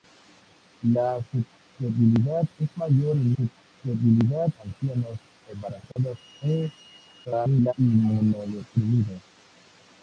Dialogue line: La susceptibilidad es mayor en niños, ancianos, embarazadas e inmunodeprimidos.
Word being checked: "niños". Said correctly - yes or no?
no